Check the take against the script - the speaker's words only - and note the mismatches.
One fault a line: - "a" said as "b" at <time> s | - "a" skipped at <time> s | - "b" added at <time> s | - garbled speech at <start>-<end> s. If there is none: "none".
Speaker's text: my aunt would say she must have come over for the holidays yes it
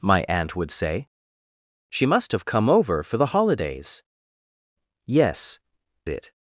none